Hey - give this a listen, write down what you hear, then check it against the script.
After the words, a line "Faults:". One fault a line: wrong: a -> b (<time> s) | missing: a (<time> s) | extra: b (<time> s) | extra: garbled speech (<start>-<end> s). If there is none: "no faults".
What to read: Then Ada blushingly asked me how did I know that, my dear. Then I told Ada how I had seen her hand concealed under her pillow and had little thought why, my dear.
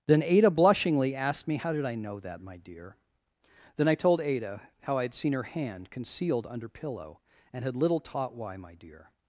Then Ada blushingly asked me how did I know that, my dear. Then I told Ada how I had seen her hand concealed under pillow and had little taught why, my dear.
Faults:
missing: her (6.7 s)
wrong: thought -> taught (8.0 s)